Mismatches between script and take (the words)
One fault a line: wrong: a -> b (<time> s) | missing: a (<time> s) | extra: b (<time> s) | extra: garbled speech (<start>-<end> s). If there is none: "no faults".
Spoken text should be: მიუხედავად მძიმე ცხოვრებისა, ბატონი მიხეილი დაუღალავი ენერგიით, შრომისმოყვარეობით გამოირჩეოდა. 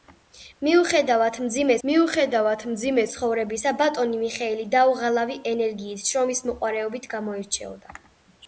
extra: მიუხედავად მძიმე (1.9 s)